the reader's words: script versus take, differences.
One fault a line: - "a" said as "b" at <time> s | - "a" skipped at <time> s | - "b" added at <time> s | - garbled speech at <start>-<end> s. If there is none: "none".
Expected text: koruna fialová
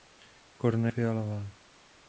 none